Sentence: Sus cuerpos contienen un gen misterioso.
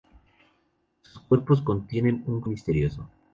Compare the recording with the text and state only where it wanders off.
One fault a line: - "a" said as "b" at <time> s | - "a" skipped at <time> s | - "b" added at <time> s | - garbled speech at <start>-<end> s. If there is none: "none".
- "gen" skipped at 2.4 s